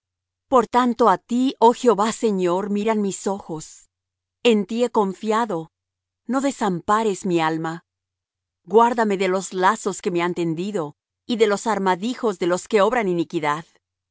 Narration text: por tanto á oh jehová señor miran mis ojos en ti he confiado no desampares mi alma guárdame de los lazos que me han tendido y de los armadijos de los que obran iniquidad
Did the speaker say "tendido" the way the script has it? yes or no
yes